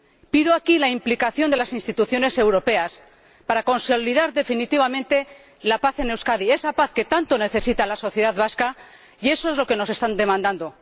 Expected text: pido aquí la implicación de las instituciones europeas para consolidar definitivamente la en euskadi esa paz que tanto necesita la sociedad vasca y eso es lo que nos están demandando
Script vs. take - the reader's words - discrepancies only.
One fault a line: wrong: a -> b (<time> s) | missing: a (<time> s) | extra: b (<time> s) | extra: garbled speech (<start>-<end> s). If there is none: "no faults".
extra: paz (5.8 s)